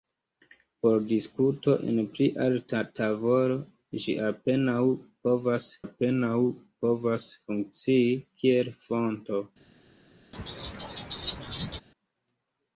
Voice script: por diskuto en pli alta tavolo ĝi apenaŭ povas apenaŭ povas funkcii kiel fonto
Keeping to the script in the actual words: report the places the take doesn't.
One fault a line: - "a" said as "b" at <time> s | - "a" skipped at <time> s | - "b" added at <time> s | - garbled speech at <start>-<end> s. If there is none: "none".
none